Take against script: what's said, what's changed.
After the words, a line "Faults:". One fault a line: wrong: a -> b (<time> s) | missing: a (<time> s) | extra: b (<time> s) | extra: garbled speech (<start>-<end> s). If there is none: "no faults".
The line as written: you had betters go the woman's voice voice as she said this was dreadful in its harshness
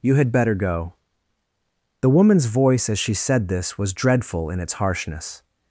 you had better go the woman's voice as she said this was dreadful in its harshness
Faults:
wrong: betters -> better (0.3 s)
missing: voice (2.9 s)